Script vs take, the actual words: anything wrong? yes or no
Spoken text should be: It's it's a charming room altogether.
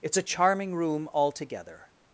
yes